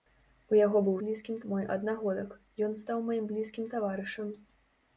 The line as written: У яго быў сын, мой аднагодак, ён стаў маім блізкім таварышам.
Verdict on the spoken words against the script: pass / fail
fail